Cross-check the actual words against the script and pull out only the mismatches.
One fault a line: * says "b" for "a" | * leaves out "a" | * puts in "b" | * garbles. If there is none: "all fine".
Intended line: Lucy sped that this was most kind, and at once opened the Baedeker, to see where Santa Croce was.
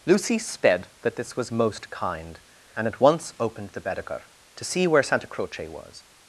all fine